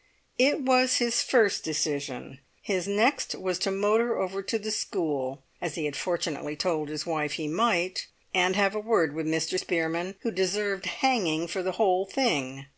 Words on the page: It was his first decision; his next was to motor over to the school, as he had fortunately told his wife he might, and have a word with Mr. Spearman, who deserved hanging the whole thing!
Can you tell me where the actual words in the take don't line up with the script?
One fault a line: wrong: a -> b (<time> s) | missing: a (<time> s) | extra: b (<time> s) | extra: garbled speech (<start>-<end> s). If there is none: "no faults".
extra: for (11.5 s)